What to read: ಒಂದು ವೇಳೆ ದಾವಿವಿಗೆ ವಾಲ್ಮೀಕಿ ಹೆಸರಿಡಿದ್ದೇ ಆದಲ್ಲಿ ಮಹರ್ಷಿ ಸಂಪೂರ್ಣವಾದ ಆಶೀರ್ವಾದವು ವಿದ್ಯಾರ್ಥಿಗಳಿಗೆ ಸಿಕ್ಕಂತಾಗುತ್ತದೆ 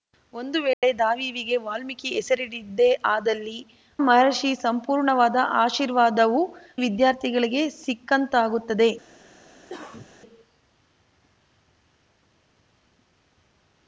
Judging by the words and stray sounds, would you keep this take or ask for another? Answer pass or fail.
fail